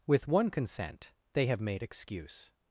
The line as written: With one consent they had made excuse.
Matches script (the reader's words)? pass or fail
fail